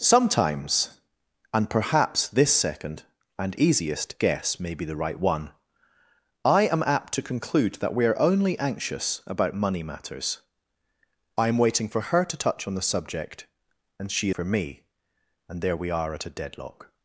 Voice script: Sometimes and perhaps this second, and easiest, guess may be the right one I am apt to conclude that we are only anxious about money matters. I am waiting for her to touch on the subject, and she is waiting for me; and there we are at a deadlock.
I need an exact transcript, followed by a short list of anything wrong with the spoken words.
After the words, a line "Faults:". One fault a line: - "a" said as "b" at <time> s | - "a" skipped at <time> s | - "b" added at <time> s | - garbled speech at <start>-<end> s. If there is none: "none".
Sometimes and perhaps this second, and easiest, guess may be the right one I am apt to conclude that we are only anxious about money matters. I am waiting for her to touch on the subject, and she for me; and there we are at a deadlock.
Faults:
- "is waiting" skipped at 14.3 s